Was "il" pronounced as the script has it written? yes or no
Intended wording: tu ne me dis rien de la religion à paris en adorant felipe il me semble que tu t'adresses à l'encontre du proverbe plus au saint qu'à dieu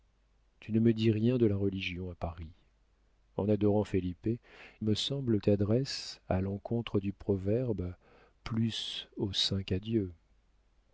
no